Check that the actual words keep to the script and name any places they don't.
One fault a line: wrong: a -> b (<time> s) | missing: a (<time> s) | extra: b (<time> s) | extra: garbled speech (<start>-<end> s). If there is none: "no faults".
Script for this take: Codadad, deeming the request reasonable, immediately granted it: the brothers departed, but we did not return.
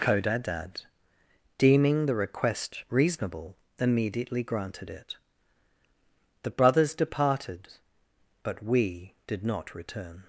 no faults